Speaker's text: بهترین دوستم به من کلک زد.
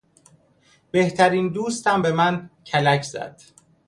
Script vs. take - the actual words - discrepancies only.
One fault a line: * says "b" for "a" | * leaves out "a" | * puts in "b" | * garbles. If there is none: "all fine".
all fine